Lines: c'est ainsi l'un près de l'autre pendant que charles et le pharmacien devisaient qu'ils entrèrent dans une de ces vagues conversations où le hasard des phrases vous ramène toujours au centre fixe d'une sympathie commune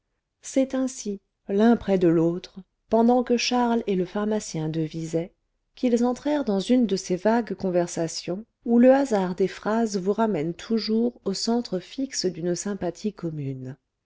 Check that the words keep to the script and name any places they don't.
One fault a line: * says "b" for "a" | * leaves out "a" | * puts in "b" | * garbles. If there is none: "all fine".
all fine